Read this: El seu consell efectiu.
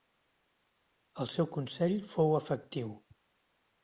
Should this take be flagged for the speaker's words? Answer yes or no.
yes